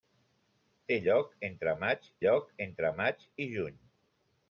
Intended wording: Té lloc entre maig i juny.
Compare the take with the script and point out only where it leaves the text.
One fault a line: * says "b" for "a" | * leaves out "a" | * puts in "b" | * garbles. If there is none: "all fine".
* puts in "lloc entre maig"